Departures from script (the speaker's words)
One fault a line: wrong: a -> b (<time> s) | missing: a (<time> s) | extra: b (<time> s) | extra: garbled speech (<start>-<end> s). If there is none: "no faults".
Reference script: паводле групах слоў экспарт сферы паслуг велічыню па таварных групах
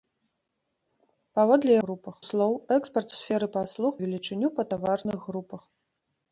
no faults